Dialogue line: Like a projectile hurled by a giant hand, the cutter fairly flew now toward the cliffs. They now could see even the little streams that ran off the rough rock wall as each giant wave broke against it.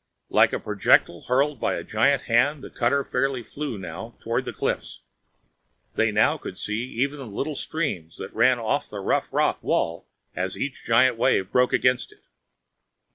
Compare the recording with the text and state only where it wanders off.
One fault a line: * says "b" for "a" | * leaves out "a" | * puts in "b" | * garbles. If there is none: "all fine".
all fine